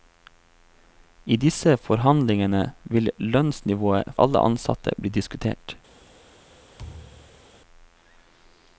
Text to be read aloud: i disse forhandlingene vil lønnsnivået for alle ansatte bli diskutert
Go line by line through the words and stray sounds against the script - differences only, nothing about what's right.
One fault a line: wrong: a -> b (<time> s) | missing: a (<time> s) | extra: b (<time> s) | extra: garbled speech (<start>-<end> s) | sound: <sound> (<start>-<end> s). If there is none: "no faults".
missing: for (4.1 s)
sound: thud (6.8-7.5 s)